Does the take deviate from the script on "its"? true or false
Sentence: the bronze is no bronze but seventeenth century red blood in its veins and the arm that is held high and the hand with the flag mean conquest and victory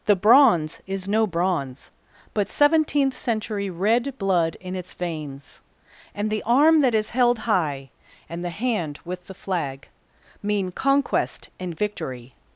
false